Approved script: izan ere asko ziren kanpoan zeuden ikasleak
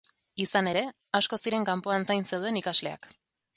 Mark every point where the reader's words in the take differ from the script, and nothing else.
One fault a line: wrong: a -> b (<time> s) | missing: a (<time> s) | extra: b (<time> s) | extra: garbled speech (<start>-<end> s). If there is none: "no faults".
extra: zain (2.1 s)